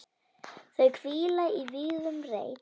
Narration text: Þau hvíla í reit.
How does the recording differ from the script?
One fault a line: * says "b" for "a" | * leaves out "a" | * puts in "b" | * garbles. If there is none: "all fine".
* puts in "vígðum"